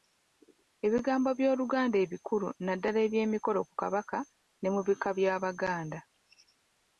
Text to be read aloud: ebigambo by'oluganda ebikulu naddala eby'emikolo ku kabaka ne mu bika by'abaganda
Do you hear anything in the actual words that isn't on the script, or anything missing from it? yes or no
no